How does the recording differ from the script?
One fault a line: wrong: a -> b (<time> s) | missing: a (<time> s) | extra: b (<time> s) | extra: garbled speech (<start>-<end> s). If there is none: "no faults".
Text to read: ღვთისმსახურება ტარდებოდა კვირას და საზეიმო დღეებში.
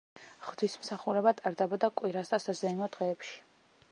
no faults